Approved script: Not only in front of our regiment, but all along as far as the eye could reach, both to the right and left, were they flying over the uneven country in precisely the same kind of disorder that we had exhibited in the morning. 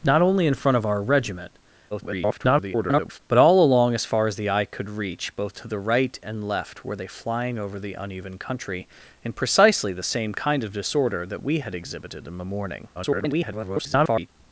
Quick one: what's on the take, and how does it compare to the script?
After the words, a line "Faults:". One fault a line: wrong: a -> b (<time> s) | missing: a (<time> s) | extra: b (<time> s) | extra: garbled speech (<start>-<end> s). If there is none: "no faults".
Not only in front of our regiment, [garbled] but all along as far as the eye could reach, both to the right and left, were they flying over the uneven country in precisely the same kind of disorder that we had exhibited in the morning. [garbled]
Faults:
extra: garbled speech (1.9-3.2 s)
extra: garbled speech (12.9-14.3 s)